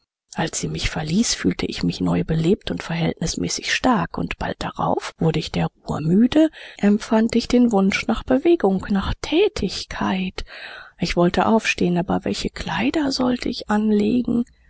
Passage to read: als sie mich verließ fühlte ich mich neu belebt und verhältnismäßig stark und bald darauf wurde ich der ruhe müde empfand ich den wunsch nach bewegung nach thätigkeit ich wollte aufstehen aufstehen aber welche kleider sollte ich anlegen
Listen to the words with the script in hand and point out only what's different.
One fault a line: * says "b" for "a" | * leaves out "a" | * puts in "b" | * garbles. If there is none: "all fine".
* leaves out "aufstehen"